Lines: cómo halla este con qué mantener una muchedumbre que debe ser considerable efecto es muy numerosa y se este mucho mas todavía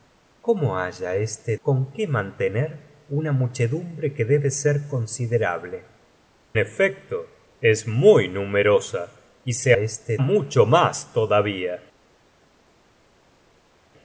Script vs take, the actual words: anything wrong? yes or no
no